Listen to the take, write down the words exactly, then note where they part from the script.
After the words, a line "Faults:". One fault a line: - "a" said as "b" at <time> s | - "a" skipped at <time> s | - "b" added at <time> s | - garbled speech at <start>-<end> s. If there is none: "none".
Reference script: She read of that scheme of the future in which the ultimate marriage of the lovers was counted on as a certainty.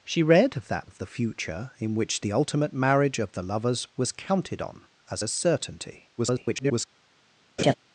She read of that of the future in which the ultimate marriage of the lovers was counted on as a certainty. [garbled]
Faults:
- "scheme" skipped at 0.9 s
- garbled speech at 6.2-6.9 s